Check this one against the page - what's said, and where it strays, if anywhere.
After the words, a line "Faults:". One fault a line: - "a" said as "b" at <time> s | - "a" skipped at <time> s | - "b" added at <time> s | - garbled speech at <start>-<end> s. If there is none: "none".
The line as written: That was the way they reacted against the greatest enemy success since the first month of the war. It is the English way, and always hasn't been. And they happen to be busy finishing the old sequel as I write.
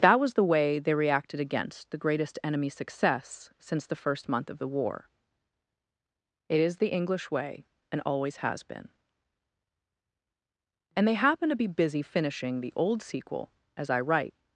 That was the way they reacted against the greatest enemy success since the first month of the war. It is the English way, and always has been. And they happen to be busy finishing the old sequel as I write.
Faults:
- "hasn't" said as "has" at 8.4 s